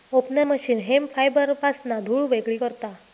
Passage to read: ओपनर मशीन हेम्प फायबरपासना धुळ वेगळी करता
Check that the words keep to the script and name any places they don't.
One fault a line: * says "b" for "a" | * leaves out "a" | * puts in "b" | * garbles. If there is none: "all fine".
all fine